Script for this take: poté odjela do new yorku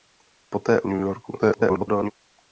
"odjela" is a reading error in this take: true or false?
true